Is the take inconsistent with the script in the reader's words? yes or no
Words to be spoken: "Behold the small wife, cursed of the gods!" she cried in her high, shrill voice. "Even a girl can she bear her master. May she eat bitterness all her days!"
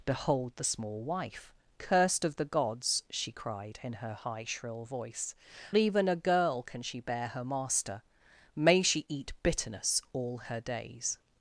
no